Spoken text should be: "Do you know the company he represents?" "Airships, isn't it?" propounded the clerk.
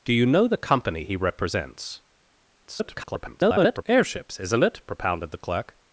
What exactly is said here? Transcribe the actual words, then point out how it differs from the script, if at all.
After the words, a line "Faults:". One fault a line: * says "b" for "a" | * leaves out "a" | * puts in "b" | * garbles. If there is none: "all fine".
"Do you know the company he represents?" [garbled] "Airships, isn't it?" propounded the clerk.
Faults:
* garbles